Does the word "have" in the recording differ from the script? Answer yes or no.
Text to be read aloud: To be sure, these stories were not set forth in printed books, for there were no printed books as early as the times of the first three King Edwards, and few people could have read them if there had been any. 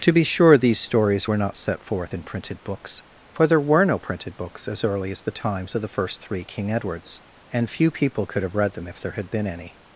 no